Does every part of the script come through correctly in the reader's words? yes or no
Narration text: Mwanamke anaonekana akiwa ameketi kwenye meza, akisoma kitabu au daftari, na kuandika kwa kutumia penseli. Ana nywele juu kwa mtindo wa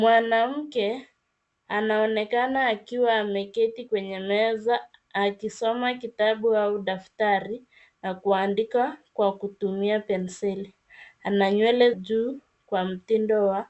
yes